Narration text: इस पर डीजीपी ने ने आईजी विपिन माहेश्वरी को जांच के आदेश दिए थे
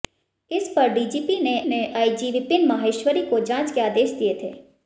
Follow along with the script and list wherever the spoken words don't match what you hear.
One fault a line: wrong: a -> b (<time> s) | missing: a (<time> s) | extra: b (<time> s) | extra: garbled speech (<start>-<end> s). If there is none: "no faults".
no faults